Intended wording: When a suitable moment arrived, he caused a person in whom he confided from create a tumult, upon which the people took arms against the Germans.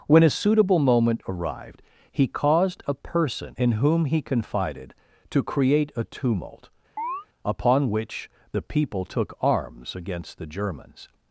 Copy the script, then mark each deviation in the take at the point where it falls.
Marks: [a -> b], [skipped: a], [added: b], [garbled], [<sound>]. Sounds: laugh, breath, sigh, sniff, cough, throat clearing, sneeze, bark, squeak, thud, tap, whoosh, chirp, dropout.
When a suitable moment arrived, he caused a person in whom he confided [from -> to] create a tumult, [chirp] upon which the people took arms against the Germans.